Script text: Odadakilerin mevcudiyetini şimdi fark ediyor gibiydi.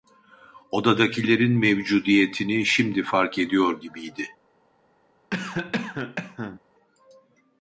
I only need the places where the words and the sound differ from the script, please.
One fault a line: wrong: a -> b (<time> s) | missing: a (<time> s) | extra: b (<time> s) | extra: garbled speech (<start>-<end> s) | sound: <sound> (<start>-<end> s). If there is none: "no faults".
sound: cough (5.3-6.6 s)